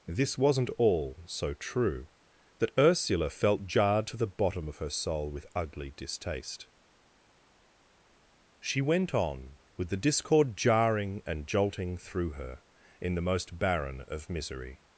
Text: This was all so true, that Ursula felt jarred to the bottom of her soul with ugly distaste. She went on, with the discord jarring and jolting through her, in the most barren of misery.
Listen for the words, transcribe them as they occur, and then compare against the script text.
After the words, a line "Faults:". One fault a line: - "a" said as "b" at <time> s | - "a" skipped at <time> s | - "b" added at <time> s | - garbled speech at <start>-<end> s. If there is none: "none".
This wasn't all so true, that Ursula felt jarred to the bottom of her soul with ugly distaste. She went on, with the discord jarring and jolting through her, in the most barren of misery.
Faults:
- "was" said as "wasn't" at 0.4 s